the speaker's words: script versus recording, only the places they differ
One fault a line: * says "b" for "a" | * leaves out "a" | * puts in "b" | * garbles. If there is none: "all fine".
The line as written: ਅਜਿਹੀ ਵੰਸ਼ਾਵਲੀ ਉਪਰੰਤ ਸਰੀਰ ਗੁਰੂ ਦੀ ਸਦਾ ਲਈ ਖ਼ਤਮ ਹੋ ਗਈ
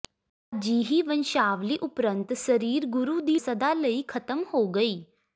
all fine